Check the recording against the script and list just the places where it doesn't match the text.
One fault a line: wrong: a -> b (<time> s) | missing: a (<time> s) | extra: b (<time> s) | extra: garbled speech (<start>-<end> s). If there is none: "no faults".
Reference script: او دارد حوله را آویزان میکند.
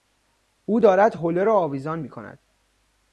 no faults